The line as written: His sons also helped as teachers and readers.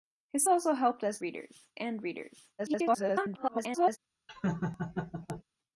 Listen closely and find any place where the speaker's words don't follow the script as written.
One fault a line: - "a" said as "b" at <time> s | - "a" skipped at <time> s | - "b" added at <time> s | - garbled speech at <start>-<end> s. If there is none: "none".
- "sons" skipped at 0.4 s
- "teachers" said as "readers" at 1.2 s
- garbled speech at 2.6-4.0 s